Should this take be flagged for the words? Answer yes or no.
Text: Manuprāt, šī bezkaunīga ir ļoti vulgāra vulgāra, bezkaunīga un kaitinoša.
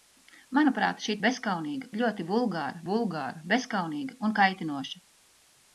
no